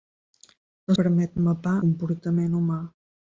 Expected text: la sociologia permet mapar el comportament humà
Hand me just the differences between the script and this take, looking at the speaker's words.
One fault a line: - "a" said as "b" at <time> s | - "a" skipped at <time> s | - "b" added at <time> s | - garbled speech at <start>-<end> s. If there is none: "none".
- "sociologia" skipped at 0.9 s
- "el" skipped at 1.8 s